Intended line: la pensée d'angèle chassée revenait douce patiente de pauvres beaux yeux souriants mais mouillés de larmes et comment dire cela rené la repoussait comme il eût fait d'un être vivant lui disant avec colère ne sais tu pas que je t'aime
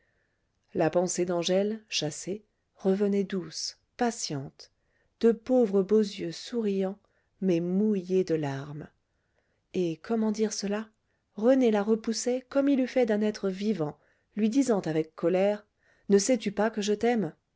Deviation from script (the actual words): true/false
false